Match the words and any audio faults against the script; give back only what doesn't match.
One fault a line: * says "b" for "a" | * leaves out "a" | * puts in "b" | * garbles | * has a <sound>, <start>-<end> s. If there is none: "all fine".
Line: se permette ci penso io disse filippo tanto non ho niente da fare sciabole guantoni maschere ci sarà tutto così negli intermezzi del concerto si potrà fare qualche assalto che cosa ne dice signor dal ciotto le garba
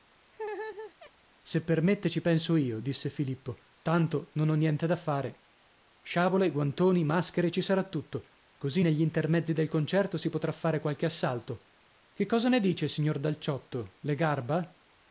* has a laugh, 0.3-1.1 s